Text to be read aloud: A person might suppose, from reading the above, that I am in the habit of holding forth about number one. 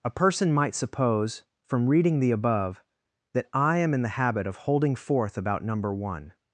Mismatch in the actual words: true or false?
false